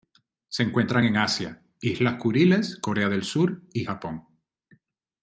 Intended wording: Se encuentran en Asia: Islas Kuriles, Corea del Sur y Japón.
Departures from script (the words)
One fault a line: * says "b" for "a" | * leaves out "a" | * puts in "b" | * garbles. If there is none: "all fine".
all fine